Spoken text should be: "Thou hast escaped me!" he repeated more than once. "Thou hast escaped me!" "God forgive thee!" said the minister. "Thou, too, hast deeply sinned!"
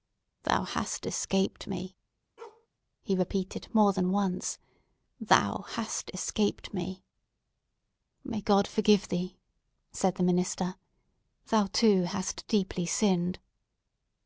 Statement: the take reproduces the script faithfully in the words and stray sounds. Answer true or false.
false